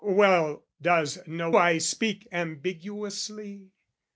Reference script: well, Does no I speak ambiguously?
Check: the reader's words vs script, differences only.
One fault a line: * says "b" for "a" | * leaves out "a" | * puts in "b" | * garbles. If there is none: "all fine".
all fine